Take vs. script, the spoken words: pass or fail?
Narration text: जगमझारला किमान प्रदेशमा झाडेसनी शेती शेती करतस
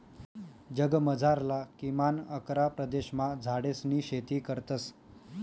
fail